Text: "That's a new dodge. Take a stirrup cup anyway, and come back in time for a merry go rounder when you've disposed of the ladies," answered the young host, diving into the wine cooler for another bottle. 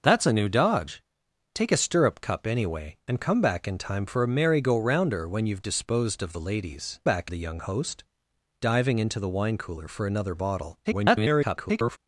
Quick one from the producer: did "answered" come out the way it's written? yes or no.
no